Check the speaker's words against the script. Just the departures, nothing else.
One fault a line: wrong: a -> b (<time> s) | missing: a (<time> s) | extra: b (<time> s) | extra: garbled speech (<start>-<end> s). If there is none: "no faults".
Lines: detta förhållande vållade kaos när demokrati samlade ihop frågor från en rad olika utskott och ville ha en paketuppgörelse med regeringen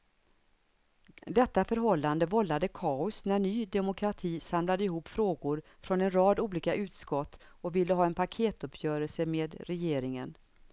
extra: ny (3.4 s)